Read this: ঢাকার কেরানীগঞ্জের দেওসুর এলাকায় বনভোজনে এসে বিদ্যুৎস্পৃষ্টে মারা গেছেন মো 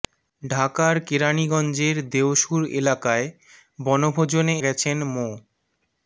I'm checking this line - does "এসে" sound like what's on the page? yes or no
no